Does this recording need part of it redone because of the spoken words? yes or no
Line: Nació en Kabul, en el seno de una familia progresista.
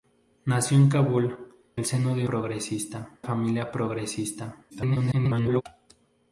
yes